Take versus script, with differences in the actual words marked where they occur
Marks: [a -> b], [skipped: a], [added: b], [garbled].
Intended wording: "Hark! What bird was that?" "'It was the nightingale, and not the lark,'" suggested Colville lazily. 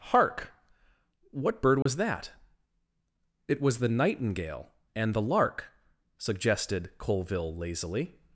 "Hark! What bird was that?" "'It was the nightingale, and [skipped: not] the lark,'" suggested Colville lazily.